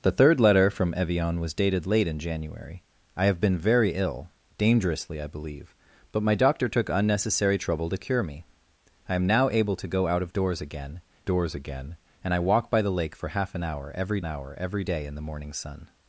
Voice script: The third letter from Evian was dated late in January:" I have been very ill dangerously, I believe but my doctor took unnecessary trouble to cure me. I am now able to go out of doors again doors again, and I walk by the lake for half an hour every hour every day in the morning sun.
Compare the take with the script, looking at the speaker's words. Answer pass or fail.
pass